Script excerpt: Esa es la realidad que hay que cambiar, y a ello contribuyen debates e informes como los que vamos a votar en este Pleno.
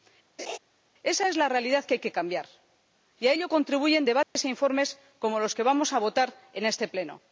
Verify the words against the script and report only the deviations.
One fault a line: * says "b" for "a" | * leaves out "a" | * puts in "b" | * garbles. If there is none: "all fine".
all fine